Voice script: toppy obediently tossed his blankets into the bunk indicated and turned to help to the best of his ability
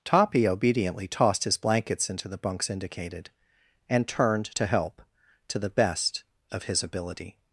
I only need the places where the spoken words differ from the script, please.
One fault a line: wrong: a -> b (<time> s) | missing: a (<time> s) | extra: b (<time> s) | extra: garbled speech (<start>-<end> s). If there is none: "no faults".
wrong: bunk -> bunks (2.4 s)